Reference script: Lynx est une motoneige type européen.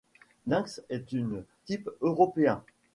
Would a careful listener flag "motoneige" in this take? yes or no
yes